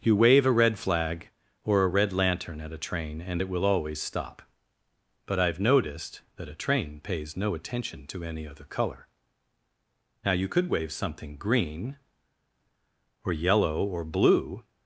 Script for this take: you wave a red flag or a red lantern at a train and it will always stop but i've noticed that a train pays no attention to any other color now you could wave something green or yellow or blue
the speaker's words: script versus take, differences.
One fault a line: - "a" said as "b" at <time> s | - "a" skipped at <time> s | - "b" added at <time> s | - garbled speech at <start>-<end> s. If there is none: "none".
none